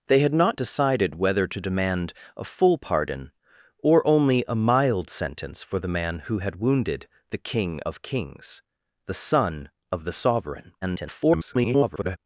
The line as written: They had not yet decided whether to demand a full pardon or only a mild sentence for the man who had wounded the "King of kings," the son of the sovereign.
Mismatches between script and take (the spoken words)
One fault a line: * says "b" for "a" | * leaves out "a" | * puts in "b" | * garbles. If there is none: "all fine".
* leaves out "yet"
* garbles